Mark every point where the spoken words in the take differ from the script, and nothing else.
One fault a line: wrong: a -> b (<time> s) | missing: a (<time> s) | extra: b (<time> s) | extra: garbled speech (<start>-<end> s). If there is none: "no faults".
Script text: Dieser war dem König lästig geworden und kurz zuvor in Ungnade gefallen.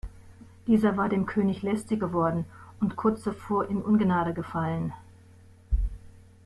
no faults